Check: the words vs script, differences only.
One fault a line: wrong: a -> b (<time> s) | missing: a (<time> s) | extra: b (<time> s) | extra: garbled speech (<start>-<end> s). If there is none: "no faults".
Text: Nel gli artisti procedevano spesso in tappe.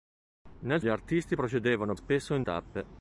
no faults